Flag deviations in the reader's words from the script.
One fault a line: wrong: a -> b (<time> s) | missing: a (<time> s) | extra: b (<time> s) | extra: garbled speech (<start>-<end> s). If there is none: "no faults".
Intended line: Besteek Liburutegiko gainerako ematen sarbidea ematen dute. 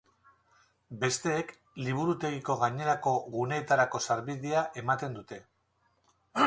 wrong: ematen -> guneetarako (3.3 s)